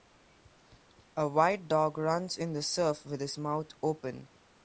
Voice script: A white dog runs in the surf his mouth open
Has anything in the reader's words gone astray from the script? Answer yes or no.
yes